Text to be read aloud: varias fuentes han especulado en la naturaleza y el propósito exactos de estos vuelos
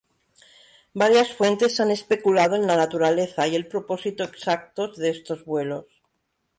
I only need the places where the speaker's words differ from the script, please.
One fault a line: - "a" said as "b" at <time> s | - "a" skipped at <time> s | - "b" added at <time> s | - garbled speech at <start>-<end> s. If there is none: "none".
none